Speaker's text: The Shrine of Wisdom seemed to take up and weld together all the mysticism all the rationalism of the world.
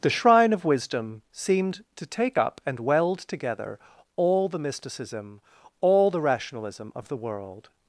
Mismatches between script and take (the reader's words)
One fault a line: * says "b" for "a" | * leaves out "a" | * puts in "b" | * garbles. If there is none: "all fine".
all fine